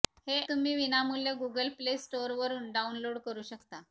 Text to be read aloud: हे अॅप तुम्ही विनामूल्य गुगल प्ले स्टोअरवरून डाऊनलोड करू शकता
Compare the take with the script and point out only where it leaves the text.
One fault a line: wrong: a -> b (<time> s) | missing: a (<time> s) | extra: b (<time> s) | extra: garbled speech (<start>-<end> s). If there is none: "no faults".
missing: अॅप (0.4 s)